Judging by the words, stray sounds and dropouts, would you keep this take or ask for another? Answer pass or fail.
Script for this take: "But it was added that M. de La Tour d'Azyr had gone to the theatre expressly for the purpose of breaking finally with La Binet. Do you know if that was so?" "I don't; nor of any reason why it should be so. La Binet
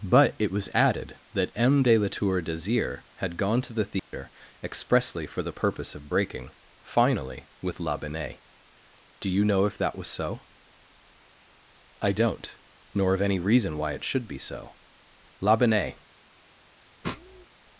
fail